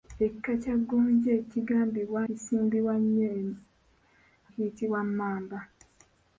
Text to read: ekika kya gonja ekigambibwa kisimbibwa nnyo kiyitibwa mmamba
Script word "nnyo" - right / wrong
right